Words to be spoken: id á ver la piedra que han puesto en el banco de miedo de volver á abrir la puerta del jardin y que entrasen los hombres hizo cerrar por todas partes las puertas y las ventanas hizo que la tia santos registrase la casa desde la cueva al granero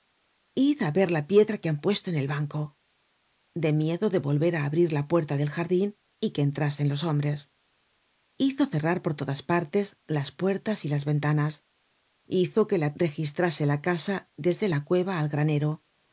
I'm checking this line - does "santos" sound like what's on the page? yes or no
no